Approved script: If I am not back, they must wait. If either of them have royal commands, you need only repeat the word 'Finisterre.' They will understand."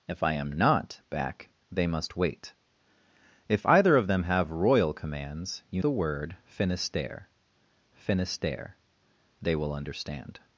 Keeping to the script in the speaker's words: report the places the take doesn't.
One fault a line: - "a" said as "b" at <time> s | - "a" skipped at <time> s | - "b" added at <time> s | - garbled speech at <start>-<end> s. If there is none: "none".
- "need only repeat" skipped at 5.8 s
- "finisterre" added at 7.9 s